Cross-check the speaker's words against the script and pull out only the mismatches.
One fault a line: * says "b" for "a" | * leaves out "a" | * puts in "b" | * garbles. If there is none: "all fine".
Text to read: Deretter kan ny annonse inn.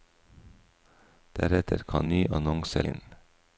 all fine